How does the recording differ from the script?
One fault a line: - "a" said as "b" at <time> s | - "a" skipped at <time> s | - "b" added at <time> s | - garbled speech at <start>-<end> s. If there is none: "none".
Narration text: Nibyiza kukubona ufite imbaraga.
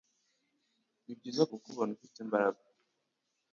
none